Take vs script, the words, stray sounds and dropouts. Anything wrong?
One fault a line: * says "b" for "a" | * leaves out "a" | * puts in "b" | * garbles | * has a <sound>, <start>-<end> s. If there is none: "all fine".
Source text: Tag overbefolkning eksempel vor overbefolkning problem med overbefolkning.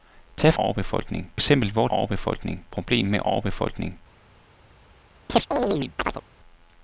* has a chirp, 5.3-6.2 s